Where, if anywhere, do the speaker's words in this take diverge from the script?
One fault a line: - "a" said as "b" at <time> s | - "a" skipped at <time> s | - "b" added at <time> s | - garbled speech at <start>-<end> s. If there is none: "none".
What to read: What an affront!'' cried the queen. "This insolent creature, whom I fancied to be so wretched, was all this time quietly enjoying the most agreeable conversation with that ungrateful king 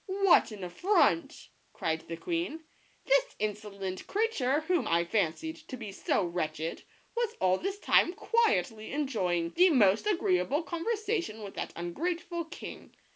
none